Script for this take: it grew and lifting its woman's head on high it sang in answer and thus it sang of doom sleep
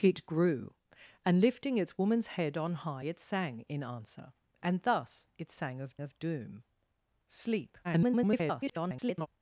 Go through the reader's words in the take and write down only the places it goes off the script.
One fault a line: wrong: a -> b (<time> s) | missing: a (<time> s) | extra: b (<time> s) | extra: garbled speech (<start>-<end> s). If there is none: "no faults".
extra: of (6.0 s)
extra: garbled speech (7.8-9.3 s)